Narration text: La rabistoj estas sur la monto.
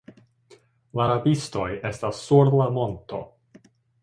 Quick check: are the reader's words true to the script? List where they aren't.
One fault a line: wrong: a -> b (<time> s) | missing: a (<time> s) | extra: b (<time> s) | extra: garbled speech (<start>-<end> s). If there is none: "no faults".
no faults